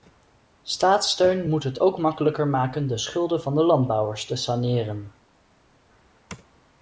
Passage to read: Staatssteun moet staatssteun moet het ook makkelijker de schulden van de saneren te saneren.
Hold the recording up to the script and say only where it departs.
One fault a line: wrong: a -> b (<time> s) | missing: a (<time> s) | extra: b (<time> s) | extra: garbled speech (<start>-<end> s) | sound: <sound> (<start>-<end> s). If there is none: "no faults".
missing: staatssteun moet (1.6 s)
extra: maken (2.5 s)
wrong: saneren -> landbouwers (3.6 s)